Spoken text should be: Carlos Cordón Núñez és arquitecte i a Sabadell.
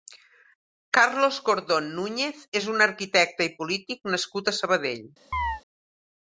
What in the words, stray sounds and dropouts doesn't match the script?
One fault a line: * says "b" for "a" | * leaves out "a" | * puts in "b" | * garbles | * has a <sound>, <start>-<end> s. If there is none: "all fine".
* puts in "un"
* puts in "polític nascut"
* has a chirp, 5.3-5.6 s